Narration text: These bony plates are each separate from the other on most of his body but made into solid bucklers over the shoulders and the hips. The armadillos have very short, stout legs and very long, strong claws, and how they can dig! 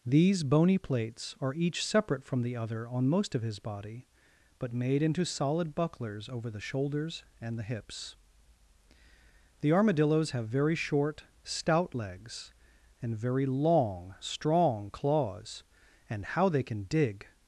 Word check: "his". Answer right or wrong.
right